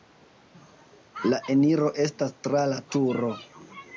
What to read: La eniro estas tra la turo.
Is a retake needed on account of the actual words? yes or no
no